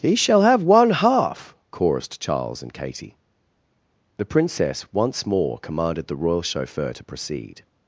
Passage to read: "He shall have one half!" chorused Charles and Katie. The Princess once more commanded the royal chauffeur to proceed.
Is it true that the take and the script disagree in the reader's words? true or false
false